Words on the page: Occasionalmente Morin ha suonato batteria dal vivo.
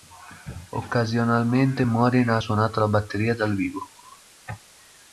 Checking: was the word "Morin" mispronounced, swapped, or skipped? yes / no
no